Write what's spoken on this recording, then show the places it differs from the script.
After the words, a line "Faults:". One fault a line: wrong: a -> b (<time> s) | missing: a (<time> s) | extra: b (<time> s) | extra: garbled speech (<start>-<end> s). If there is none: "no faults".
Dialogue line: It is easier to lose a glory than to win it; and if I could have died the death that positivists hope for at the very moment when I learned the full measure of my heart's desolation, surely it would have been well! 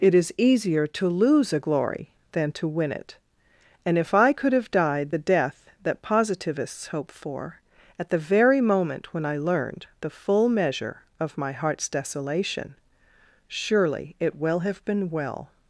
It is easier to lose a glory than to win it; and if I could have died the death that positivists hope for at the very moment when I learned the full measure of my heart's desolation, surely it will have been well!
Faults:
wrong: would -> will (14.4 s)